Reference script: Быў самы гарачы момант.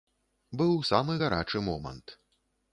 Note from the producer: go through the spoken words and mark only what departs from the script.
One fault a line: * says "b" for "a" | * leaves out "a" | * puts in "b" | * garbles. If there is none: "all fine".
all fine